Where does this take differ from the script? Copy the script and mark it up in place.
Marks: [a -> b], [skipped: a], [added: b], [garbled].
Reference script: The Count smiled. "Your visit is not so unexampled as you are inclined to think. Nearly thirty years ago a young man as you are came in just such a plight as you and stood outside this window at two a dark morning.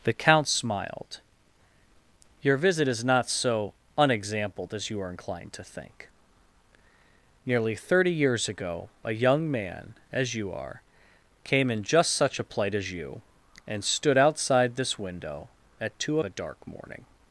The Count smiled. "Your visit is not so unexampled as you are inclined to think. Nearly thirty years ago a young man as you are came in just such a plight as you and stood outside this window at two a dark morning.